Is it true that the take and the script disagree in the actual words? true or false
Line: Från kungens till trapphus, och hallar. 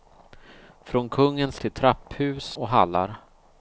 false